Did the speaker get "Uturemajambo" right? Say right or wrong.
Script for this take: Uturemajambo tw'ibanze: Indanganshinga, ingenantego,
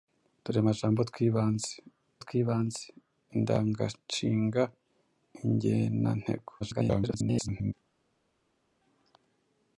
right